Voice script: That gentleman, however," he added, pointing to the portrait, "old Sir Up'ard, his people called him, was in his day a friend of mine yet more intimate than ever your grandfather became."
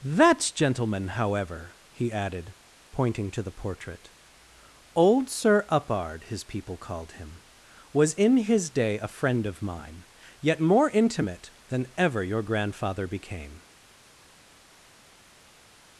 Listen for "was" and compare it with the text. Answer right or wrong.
right